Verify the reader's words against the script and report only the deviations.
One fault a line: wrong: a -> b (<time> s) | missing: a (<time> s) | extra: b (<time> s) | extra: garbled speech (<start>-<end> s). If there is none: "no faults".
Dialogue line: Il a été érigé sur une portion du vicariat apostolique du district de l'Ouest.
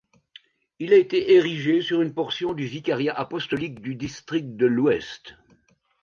no faults